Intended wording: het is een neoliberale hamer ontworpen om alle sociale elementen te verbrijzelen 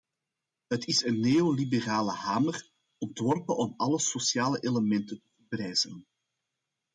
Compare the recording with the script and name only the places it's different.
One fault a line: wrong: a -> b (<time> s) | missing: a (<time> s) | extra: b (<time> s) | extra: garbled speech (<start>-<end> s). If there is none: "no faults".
no faults